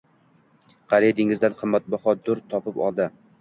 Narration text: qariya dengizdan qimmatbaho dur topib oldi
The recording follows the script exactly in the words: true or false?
true